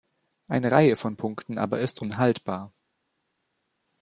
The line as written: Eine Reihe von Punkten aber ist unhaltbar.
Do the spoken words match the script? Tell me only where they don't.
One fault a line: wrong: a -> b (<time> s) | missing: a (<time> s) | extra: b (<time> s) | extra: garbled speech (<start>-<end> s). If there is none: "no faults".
no faults